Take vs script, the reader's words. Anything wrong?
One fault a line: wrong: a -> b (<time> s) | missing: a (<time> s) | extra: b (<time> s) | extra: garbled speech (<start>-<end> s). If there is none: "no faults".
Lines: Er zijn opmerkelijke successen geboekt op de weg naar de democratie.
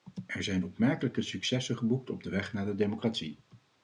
no faults